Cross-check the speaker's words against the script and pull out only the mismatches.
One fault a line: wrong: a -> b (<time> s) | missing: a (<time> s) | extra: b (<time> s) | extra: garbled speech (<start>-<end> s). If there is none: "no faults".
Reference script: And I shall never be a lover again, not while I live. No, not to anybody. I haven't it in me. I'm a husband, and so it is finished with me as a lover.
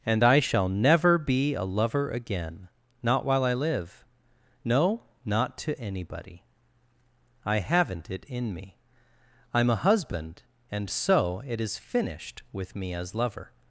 missing: a (13.1 s)